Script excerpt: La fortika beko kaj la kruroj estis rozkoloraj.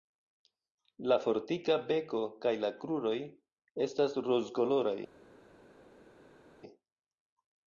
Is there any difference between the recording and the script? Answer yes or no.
yes